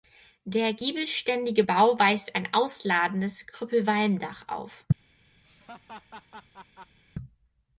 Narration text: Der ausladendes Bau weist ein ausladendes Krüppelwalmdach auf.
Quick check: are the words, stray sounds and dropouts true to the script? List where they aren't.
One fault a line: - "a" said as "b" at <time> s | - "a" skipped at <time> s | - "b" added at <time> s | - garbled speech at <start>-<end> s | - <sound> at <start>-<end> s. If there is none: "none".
- "ausladendes" said as "giebelständige" at 0.7 s
- laugh at 5.4-7.0 s